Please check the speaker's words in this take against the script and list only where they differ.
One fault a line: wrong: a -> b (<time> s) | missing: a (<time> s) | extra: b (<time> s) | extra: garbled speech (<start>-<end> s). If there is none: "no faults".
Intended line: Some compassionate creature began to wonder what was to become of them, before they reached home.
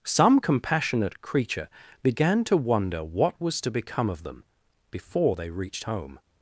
no faults